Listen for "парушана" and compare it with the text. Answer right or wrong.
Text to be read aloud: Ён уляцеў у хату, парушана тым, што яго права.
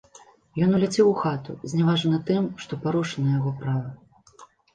wrong